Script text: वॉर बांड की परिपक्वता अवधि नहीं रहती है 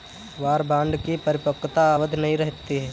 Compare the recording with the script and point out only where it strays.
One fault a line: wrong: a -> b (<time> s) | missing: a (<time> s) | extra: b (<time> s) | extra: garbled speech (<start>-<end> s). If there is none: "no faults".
no faults